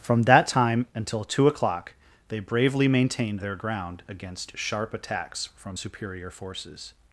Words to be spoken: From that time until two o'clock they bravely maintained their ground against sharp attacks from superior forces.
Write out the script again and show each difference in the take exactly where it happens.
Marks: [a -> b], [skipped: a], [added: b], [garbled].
From that time until two o'clock they bravely maintained their ground against sharp attacks from superior forces.